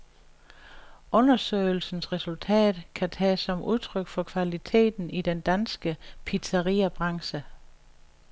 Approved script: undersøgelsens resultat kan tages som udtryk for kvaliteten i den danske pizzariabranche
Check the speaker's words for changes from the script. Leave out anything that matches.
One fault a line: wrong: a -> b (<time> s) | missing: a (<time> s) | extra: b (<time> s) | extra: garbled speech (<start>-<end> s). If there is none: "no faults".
no faults